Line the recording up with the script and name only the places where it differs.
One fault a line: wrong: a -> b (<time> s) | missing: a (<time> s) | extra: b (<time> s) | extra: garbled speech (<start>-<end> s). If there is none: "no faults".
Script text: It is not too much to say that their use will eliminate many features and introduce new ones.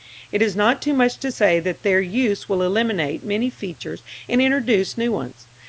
no faults